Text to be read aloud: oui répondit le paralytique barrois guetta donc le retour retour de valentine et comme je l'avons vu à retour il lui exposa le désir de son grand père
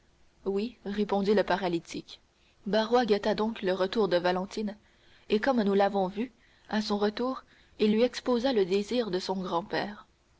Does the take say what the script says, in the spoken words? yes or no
no